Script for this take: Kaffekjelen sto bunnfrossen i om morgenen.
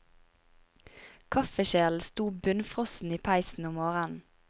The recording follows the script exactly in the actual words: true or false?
false